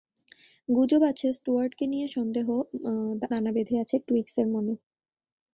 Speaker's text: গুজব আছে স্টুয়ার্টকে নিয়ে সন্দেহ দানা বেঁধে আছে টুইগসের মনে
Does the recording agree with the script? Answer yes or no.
yes